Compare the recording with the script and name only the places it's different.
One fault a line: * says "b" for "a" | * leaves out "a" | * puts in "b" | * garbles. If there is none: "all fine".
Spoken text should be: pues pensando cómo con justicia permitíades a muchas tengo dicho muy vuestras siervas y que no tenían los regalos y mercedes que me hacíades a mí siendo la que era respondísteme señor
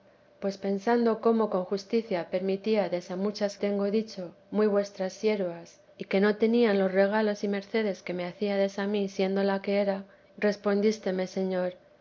all fine